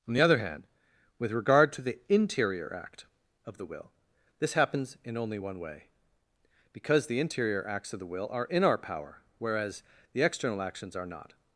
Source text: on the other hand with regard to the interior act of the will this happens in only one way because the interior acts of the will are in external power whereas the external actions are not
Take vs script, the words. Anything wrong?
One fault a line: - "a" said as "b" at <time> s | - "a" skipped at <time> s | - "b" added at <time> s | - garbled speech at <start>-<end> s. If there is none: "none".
- "external" said as "our" at 8.6 s